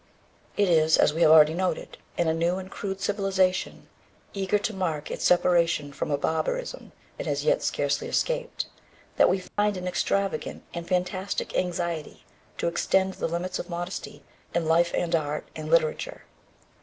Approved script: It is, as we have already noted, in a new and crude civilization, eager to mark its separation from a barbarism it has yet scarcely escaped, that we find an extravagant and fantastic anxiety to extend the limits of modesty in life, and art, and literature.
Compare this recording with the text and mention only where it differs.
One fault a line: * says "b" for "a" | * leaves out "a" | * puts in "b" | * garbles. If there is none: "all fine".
all fine